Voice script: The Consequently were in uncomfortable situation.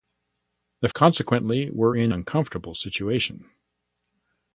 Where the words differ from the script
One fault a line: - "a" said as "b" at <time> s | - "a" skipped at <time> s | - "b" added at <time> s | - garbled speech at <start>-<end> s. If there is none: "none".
none